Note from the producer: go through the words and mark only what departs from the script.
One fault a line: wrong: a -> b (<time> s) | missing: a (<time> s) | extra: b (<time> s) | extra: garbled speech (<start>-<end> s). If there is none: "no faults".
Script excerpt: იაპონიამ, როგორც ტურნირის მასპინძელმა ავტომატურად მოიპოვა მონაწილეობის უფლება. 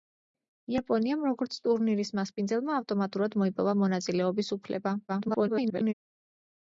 extra: garbled speech (5.1-5.9 s)